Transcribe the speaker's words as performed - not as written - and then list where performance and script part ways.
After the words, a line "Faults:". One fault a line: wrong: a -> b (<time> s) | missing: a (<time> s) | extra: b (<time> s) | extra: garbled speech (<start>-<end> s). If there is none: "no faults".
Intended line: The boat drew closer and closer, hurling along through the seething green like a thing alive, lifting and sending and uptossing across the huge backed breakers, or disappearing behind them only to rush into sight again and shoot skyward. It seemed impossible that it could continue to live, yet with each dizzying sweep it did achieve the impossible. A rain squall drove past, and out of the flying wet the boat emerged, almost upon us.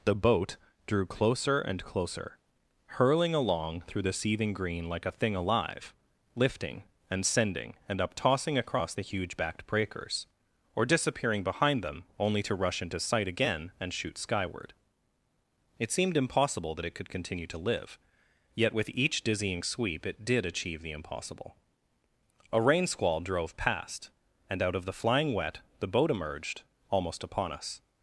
The boat drew closer and closer, hurling along through the seething green like a thing alive, lifting and sending and uptossing across the huge backed breakers, or disappearing behind them only to rush into sight again and shoot skyward. It seemed impossible that it could continue to live, yet with each dizzying sweep it did achieve the impossible. A rain squall drove past, and out of the flying wet the boat emerged, almost upon us.
Faults:
no faults